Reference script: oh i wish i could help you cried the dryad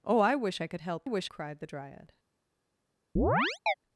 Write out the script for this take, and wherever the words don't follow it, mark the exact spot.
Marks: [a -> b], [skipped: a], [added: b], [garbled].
oh i wish i could help [you -> wish] cried the dryad